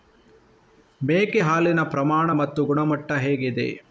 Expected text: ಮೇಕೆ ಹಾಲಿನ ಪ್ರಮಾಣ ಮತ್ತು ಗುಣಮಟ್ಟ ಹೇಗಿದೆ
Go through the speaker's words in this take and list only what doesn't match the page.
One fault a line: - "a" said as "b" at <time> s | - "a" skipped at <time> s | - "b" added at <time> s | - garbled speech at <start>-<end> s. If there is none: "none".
none